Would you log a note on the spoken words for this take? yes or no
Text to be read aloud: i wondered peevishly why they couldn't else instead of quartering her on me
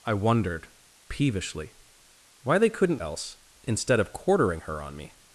no